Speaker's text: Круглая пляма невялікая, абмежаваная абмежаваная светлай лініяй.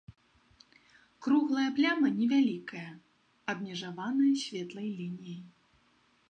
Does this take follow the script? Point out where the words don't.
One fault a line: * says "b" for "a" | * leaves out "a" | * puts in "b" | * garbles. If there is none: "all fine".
* leaves out "абмежаваная"